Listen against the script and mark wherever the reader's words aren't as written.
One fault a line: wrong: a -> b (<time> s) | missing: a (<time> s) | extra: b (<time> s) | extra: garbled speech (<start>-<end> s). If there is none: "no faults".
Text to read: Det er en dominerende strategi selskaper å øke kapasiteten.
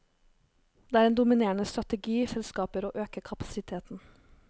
no faults